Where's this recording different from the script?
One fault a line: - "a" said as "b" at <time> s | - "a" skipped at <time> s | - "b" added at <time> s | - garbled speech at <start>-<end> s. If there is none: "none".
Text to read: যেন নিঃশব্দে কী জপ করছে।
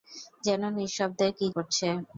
- "জপ" skipped at 1.5 s